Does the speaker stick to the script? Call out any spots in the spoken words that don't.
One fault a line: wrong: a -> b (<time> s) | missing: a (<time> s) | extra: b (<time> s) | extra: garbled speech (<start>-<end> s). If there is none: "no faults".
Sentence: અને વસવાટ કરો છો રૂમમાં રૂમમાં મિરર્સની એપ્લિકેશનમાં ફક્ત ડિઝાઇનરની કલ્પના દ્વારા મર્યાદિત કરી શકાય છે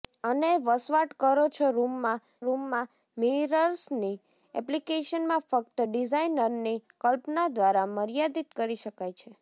no faults